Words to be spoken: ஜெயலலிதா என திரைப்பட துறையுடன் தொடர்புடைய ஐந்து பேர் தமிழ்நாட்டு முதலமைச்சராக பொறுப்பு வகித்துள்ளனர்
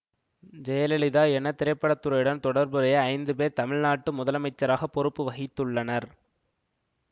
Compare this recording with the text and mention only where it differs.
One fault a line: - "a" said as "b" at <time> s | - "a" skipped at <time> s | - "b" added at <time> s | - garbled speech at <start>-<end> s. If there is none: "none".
none